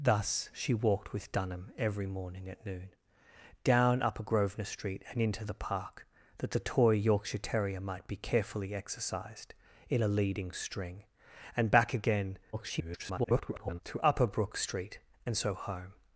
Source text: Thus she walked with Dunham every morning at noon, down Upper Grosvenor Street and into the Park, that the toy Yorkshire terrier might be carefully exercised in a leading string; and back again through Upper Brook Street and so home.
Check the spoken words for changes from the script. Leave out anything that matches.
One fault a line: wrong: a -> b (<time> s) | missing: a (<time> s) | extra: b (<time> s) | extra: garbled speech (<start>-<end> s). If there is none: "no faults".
extra: garbled speech (12.5-13.8 s)